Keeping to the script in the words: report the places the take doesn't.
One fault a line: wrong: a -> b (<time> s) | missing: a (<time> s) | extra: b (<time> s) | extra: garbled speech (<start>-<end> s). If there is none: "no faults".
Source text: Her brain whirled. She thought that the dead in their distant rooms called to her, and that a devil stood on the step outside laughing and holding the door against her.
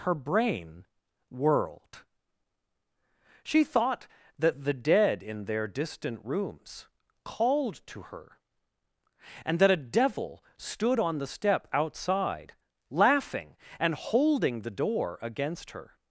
no faults